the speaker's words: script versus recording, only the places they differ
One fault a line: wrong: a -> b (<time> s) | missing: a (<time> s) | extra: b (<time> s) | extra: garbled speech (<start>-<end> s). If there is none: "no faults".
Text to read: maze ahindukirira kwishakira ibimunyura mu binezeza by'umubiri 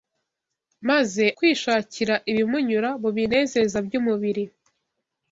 missing: ahindukirira (1.2 s)